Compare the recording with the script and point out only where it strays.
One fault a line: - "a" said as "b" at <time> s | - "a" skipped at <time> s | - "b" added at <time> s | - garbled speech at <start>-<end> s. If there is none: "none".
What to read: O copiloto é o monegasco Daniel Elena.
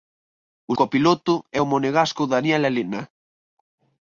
none